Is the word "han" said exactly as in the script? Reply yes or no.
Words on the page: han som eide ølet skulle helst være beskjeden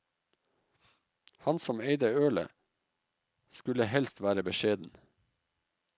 yes